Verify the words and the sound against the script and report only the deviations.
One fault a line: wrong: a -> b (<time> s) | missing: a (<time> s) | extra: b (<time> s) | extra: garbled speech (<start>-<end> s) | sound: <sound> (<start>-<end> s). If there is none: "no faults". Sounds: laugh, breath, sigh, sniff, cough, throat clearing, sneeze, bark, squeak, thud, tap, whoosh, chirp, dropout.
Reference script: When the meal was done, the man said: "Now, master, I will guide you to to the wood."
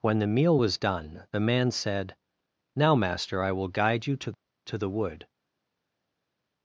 no faults